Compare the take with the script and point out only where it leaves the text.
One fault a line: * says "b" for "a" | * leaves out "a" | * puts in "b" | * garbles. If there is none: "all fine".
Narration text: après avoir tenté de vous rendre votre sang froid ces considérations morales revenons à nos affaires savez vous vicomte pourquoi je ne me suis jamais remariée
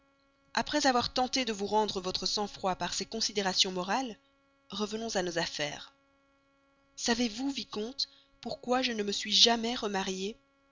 * puts in "par"